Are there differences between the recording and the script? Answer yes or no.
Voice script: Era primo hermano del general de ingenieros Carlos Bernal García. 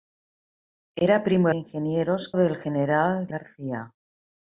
yes